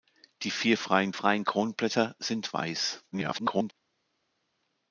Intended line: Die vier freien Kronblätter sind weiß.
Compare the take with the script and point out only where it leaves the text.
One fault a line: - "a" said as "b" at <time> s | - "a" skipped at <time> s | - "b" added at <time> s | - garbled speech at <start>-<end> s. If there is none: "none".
- "freien" added at 1.1 s
- garbled speech at 3.1-3.7 s